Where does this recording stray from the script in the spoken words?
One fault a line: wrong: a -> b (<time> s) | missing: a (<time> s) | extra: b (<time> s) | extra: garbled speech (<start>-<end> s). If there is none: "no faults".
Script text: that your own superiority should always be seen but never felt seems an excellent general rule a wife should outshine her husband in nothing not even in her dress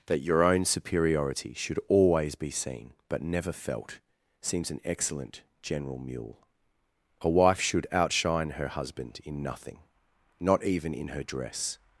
wrong: rule -> mule (6.0 s)